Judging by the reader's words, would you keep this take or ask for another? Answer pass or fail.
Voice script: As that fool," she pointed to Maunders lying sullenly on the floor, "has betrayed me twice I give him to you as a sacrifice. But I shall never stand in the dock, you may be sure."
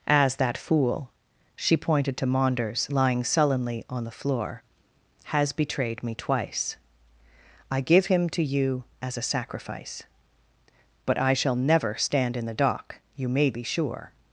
pass